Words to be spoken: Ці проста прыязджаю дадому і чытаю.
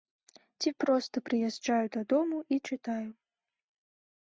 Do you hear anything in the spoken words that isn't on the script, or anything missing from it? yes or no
no